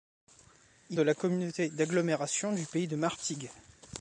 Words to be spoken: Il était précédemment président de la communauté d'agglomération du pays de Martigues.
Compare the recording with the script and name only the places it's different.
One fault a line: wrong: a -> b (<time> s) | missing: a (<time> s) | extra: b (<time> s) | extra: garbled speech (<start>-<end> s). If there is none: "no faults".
missing: était précédemment président (1.0 s)